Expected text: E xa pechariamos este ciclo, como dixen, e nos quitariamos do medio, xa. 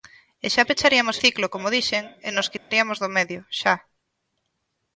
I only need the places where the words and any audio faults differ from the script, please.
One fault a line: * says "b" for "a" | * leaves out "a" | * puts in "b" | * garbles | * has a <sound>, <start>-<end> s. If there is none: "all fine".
* leaves out "este"
* has a dropout, 2.6-2.7 s